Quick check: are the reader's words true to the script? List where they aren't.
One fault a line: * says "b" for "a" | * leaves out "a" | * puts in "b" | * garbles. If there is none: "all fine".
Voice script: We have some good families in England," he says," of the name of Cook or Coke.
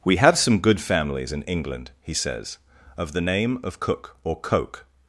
all fine